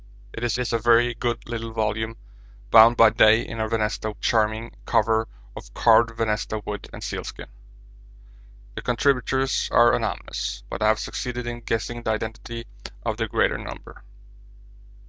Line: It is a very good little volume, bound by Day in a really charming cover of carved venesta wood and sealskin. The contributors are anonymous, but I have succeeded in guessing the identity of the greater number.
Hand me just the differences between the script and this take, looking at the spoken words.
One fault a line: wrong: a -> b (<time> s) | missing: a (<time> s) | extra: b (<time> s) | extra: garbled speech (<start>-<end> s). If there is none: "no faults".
extra: is (0.6 s)
wrong: really -> venesta (3.7 s)